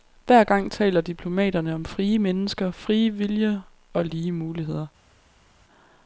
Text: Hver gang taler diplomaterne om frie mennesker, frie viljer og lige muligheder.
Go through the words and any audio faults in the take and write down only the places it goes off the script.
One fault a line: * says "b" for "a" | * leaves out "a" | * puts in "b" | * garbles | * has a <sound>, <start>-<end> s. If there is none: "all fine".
all fine